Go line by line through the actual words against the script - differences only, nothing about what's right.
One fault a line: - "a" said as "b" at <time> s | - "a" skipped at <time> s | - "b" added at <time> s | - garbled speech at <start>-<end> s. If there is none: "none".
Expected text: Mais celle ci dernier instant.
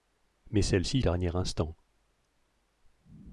none